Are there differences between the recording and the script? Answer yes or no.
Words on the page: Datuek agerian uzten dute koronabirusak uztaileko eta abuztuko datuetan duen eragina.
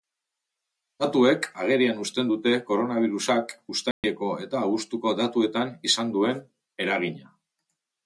yes